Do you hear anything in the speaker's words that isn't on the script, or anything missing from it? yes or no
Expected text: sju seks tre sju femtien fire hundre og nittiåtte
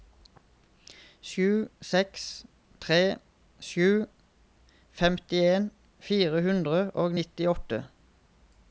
no